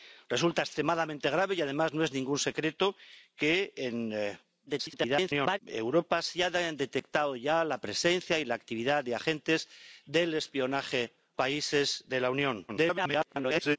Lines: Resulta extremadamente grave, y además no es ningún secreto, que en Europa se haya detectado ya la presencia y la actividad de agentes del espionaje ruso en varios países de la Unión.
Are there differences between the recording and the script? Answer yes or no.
yes